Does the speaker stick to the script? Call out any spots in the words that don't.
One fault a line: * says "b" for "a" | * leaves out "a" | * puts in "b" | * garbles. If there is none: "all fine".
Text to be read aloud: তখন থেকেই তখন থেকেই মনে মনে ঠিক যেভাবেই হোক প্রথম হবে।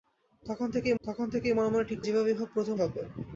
all fine